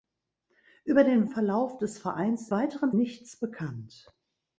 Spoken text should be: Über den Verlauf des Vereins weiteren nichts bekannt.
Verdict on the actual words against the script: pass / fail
pass